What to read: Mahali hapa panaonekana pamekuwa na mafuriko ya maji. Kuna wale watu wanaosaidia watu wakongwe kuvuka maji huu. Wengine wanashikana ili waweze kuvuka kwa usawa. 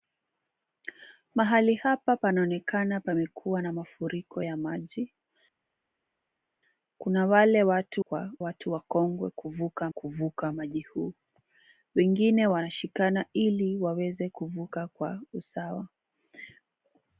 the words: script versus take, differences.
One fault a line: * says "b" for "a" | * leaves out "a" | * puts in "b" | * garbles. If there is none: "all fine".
* says "kwa" for "wanaosaidia"
* puts in "kuvuka"